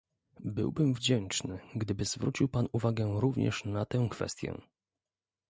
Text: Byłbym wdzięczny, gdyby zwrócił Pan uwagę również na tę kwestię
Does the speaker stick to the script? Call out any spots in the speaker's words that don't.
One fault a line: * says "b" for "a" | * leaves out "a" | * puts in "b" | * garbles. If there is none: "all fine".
all fine